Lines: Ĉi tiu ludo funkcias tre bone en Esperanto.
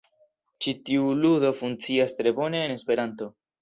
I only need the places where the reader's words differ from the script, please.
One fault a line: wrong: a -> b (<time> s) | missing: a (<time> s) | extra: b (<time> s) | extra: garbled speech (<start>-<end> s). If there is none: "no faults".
no faults